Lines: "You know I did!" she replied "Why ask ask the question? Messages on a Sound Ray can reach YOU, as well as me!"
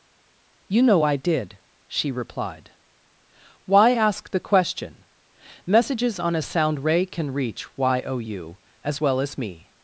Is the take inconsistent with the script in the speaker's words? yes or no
yes